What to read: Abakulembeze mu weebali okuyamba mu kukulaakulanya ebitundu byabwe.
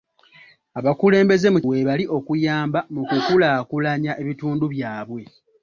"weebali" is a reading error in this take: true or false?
false